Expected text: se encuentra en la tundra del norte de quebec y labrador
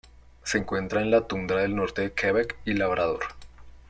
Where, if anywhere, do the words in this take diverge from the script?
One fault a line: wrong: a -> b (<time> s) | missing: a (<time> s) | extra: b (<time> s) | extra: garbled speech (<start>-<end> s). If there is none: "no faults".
no faults